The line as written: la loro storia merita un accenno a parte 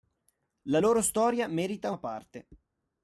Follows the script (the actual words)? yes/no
no